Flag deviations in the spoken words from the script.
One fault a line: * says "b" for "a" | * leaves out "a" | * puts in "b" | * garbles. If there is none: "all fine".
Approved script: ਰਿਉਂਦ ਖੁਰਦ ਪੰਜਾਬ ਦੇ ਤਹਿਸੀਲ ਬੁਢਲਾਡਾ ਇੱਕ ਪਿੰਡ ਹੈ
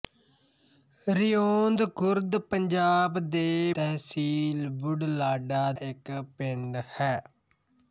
all fine